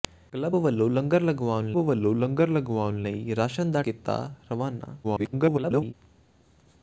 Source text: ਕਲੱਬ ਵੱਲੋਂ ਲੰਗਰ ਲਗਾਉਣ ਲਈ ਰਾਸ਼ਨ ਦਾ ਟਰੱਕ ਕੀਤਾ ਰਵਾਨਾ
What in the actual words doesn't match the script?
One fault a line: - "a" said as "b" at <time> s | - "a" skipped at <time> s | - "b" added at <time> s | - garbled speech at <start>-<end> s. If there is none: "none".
- "ਵੱਲੋਂ ਲੰਗਰ ਲਗਾਉਣ" added at 1.8 s
- "ਟਰੱਕ" skipped at 3.8 s
- garbled speech at 5.0-5.9 s